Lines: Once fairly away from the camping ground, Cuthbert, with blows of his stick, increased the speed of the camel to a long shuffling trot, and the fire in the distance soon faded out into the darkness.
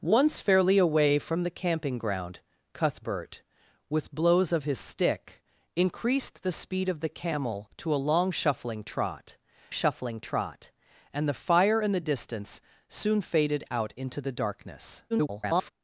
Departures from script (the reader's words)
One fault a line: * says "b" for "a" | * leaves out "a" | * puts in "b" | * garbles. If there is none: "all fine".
* puts in "shuffling trot"
* garbles